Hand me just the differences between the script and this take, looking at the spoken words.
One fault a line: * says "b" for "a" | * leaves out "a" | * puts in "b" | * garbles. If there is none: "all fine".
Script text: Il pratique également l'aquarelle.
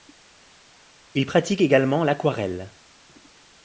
all fine